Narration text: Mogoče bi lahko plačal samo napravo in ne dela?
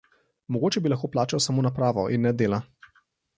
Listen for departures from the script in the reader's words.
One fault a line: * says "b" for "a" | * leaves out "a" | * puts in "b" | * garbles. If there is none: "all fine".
all fine